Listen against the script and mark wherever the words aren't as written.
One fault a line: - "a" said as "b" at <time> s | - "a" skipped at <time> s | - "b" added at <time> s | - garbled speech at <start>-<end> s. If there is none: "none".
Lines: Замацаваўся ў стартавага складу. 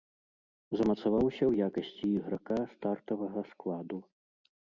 - "якасці іграка" added at 1.7 s